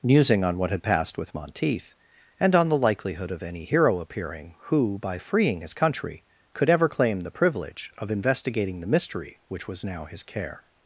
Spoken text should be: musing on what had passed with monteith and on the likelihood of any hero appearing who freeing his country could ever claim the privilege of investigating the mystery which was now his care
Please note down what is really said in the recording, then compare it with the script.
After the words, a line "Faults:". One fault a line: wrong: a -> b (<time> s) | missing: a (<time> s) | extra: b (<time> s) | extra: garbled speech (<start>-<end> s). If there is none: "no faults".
musing on what had passed with monteith and on the likelihood of any hero appearing who by freeing his country could ever claim the privilege of investigating the mystery which was now his care
Faults:
extra: by (5.0 s)